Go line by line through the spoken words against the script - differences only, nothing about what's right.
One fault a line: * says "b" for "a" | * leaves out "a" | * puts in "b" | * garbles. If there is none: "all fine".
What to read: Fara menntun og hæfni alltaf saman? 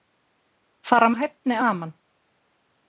* leaves out "menntun"
* leaves out "alltaf"